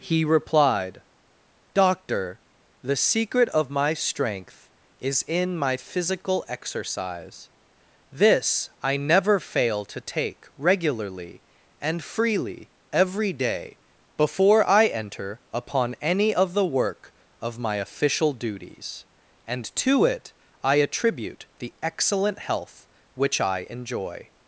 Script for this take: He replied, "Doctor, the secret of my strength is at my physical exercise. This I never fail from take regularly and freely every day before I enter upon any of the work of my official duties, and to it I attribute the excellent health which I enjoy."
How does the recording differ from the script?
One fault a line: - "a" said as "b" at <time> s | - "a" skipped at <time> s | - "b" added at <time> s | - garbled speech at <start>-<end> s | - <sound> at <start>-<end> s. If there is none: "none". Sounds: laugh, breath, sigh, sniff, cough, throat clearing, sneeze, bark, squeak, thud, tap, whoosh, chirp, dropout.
- "at" said as "in" at 5.3 s
- "from" said as "to" at 9.8 s